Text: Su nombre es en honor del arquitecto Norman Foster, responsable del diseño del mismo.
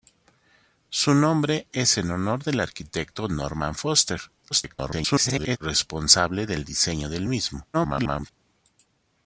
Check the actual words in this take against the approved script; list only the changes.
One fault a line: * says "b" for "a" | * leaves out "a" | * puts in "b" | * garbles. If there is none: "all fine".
* garbles
* garbles